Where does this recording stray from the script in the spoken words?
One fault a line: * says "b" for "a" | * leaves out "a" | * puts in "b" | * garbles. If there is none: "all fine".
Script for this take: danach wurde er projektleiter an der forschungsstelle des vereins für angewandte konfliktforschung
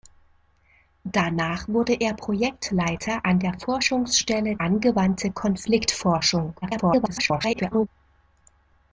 * leaves out "des vereins für"
* garbles